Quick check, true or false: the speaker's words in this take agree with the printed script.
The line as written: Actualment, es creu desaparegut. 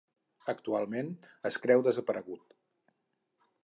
true